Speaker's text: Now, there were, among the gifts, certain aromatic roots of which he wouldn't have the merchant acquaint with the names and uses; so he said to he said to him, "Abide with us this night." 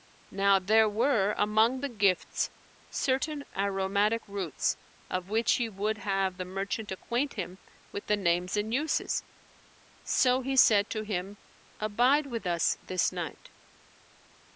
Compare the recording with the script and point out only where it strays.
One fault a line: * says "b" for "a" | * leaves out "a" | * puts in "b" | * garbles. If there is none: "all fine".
* says "would" for "wouldn't"
* puts in "him"
* leaves out "he said to"